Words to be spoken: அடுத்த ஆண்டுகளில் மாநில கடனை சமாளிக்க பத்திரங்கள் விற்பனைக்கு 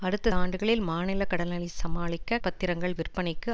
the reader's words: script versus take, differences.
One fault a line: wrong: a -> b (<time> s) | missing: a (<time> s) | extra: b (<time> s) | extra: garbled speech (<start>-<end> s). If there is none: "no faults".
no faults